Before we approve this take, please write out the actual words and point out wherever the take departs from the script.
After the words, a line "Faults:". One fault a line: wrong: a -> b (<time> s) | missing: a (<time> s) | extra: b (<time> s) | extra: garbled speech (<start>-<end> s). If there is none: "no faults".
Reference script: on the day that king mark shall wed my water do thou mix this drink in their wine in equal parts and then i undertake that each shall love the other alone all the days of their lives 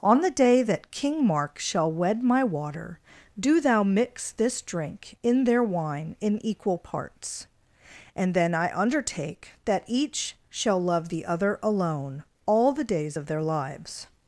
on the day that king mark shall wed my water do thou mix this drink in their wine in equal parts and then i undertake that each shall love the other alone all the days of their lives
Faults:
no faults